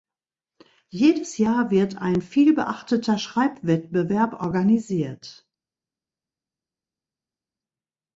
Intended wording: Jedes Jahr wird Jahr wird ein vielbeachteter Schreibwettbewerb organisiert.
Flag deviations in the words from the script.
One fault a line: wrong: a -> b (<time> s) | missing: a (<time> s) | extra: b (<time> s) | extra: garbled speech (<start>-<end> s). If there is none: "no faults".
missing: Jahr wird (2.0 s)